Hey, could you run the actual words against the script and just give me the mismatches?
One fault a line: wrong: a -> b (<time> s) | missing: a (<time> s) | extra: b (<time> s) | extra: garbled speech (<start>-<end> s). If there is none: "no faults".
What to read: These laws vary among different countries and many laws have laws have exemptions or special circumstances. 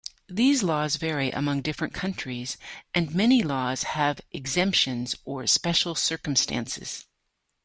missing: laws have (4.2 s)